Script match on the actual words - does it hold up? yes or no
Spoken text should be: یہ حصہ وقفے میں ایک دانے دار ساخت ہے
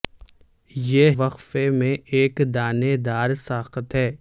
no